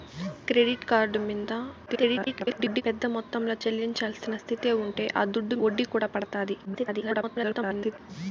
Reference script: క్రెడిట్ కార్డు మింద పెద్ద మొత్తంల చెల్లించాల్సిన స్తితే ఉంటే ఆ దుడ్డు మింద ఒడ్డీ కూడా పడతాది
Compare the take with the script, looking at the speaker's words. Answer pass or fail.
fail